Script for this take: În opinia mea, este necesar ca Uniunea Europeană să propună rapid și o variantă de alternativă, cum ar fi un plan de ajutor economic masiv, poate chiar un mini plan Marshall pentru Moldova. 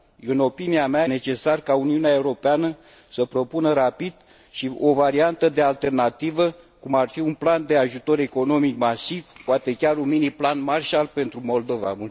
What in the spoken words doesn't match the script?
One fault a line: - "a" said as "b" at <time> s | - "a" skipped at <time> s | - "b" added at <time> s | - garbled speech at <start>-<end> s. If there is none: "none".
- "este" skipped at 1.1 s